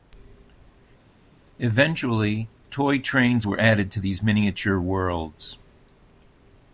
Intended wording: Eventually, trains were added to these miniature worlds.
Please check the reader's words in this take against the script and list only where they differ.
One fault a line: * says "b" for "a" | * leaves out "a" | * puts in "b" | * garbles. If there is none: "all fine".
* puts in "toy"